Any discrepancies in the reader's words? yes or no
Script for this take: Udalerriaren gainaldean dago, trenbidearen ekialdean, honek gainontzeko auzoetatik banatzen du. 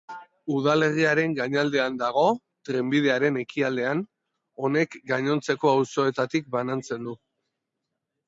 no